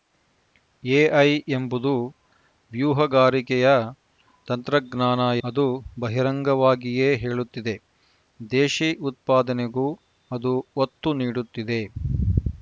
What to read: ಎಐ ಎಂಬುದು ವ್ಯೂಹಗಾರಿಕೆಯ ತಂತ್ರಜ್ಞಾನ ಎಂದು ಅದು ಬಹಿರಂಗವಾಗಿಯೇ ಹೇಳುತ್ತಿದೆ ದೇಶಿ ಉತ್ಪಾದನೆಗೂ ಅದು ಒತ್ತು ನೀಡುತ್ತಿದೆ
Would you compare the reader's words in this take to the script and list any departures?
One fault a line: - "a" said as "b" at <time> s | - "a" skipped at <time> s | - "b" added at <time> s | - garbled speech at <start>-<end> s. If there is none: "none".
- "ಎಂದು" skipped at 5.2 s